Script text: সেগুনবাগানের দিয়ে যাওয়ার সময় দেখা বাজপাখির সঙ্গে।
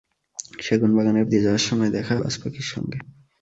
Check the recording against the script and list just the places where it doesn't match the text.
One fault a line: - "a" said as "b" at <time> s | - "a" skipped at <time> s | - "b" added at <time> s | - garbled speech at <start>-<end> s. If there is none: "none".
none